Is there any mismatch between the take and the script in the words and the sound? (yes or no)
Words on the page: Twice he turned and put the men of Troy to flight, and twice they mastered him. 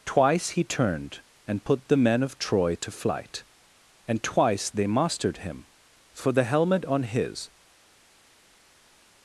yes